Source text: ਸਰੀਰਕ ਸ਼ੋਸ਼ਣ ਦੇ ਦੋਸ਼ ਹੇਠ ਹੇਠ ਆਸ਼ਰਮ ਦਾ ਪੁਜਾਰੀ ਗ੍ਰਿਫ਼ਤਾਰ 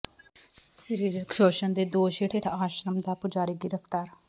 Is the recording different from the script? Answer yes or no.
no